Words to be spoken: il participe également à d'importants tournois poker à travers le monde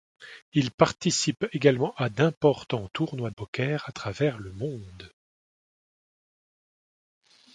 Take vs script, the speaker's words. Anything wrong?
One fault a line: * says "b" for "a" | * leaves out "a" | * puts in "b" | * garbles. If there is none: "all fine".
all fine